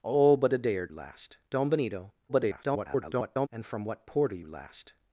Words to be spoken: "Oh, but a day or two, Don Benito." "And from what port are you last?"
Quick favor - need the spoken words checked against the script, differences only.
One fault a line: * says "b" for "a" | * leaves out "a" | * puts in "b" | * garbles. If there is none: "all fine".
* says "last" for "two"
* garbles